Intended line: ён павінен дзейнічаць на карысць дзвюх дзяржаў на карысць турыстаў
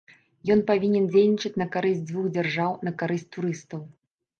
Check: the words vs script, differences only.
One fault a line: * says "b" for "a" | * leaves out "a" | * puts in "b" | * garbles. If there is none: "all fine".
all fine